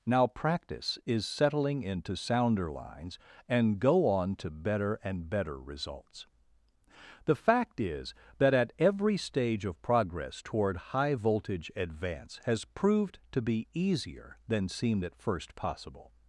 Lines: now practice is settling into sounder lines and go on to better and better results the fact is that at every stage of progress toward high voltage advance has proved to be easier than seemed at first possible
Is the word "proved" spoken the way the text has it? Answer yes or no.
yes